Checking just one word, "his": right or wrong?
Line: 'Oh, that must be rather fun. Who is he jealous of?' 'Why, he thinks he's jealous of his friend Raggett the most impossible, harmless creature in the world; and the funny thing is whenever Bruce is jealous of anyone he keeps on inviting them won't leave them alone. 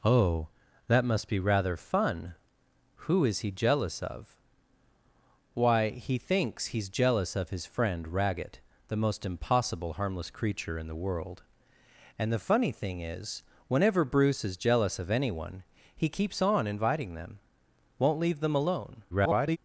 right